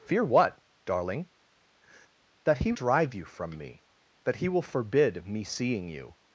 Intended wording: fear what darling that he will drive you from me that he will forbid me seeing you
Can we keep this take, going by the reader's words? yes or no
no